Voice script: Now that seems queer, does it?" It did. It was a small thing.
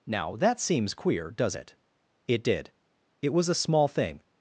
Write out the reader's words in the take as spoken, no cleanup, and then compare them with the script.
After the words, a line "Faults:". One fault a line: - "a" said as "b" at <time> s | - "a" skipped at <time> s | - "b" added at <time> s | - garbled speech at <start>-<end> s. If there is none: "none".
Now that seems queer, does it?" It did. It was a small thing.
Faults:
none